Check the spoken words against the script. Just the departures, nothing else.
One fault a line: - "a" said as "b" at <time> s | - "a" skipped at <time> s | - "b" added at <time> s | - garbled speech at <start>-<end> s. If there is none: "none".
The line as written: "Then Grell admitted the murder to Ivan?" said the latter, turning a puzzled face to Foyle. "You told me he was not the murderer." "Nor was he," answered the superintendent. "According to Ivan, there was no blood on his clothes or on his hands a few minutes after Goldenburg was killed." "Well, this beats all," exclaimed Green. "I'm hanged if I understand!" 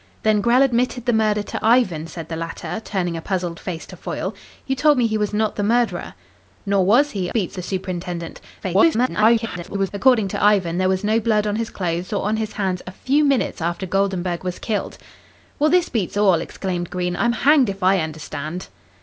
- "answered" said as "beats" at 7.3 s
- garbled speech at 8.6-9.9 s